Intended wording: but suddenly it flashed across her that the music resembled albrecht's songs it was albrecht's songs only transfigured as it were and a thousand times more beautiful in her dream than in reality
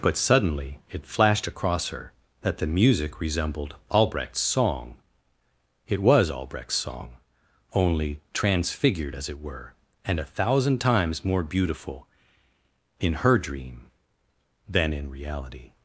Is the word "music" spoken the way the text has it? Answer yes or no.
yes